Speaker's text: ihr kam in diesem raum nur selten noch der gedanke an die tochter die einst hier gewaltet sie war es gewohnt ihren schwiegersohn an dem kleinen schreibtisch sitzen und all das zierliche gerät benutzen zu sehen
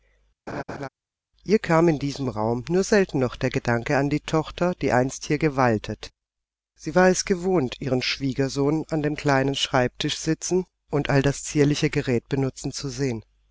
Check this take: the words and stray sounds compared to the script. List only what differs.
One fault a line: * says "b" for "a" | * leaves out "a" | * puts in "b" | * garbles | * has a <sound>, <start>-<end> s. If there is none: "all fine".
* has a laugh, 0.5-0.9 s